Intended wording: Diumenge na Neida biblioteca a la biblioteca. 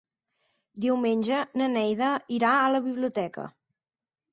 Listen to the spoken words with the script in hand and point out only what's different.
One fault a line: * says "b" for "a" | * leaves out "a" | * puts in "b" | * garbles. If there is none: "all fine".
* says "irà" for "biblioteca"